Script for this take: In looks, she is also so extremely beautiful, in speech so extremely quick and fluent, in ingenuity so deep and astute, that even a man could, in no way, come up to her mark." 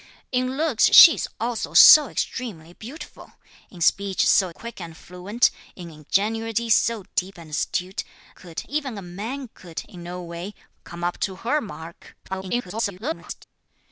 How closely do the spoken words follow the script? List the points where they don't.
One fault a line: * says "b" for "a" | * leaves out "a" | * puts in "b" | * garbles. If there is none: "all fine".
* leaves out "extremely"
* says "could" for "that"
* garbles